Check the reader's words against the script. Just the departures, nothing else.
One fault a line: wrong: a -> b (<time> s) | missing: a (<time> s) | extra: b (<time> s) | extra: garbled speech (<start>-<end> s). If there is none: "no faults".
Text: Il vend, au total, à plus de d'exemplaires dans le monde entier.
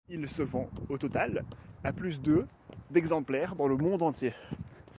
extra: se (0.3 s)